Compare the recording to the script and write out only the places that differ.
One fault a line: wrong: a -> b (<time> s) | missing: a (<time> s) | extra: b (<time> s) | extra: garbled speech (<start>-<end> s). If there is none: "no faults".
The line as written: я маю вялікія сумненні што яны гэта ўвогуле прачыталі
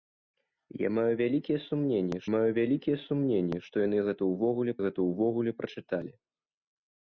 extra: маю вялікія сумненні (2.3 s)
extra: гэта ўвогуле (4.9 s)